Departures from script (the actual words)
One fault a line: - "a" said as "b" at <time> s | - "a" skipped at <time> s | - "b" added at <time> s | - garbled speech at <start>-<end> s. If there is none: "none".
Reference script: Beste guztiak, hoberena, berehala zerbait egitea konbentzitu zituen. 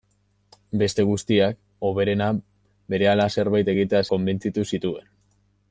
none